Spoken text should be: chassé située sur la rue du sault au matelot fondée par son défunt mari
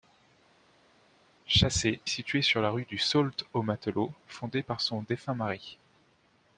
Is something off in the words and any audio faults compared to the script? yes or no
no